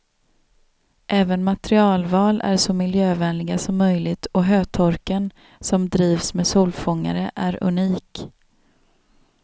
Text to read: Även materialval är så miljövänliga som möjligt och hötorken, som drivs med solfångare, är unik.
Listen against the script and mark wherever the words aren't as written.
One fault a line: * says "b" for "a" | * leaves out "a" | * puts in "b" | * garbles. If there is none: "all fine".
all fine